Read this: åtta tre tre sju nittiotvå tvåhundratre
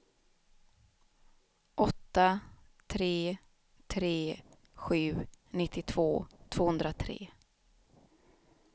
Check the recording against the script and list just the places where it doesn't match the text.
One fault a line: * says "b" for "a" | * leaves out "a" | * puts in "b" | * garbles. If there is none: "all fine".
all fine